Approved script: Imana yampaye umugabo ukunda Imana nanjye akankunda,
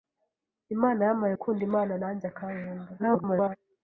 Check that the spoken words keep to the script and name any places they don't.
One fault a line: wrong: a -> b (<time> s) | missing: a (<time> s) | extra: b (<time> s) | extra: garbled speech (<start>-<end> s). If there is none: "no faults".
missing: umugabo (1.3 s)
extra: garbled speech (3.0-3.6 s)